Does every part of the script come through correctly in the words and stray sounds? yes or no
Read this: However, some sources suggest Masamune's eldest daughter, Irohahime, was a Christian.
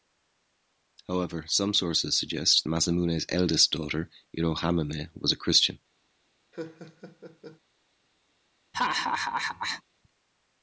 no